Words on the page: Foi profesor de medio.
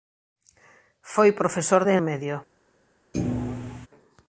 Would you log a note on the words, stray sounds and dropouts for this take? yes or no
yes